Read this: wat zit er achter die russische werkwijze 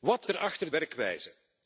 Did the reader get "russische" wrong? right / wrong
wrong